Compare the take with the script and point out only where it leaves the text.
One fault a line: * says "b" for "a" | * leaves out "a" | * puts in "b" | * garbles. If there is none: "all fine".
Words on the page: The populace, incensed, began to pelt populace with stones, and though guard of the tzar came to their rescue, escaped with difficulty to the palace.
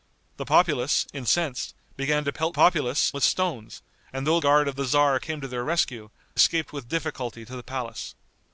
all fine